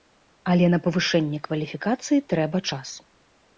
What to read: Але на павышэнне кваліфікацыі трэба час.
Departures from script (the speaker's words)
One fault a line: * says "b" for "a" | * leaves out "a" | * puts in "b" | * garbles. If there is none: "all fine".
all fine